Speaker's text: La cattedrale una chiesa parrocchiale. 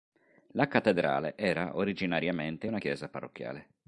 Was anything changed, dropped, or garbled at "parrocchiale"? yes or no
no